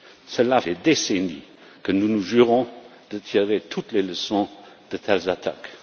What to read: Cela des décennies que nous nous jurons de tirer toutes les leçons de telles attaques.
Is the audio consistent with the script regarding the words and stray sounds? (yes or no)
yes